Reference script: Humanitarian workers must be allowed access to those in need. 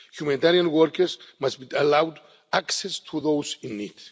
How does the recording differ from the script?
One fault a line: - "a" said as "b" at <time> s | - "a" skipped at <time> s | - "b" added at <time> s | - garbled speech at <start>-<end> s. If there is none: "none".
none